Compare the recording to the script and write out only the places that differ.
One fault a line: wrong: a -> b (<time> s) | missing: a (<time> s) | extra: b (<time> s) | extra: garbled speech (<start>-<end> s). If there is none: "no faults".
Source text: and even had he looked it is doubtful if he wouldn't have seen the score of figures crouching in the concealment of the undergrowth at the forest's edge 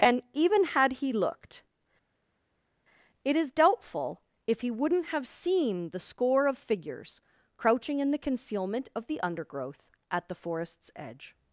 no faults